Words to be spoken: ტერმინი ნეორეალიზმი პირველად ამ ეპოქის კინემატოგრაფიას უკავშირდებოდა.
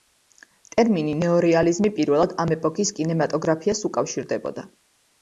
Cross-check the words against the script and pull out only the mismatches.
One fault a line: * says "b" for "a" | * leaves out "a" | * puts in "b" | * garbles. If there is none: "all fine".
all fine